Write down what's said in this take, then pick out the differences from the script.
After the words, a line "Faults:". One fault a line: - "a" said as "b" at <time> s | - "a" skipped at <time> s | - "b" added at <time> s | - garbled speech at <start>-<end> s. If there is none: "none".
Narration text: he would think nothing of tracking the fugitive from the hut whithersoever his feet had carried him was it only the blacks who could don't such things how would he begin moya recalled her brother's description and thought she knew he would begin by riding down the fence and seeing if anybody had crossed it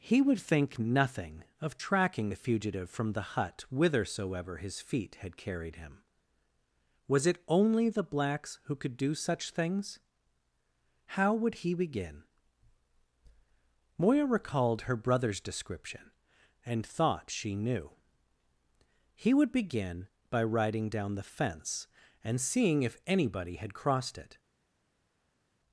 he would think nothing of tracking the fugitive from the hut whithersoever his feet had carried him was it only the blacks who could do such things how would he begin moya recalled her brother's description and thought she knew he would begin by riding down the fence and seeing if anybody had crossed it
Faults:
- "don't" said as "do" at 9.0 s